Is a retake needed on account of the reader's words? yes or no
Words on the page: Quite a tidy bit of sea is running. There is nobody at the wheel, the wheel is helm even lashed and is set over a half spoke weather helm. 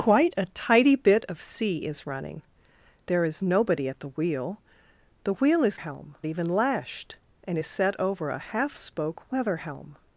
no